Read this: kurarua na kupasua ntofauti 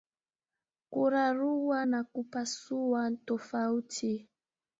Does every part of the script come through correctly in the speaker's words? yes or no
yes